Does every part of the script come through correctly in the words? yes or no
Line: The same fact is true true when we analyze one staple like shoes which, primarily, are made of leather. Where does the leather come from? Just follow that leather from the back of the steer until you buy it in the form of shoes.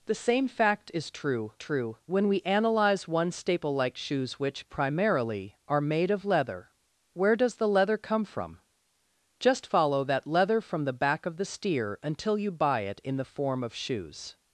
yes